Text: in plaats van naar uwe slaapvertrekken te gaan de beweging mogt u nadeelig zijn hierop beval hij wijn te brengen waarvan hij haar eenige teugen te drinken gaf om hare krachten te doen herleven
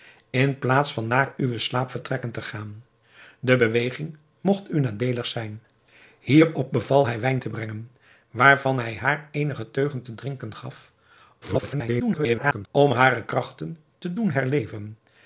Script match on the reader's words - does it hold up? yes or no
no